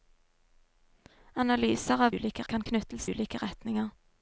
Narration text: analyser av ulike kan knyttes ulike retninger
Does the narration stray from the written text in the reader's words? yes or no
no